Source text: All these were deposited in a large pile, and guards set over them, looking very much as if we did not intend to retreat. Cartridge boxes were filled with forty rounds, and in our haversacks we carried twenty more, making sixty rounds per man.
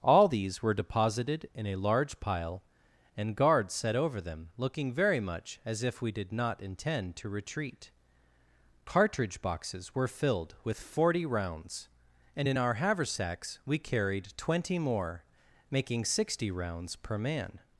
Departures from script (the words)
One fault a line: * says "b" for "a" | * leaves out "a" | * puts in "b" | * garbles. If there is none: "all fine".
all fine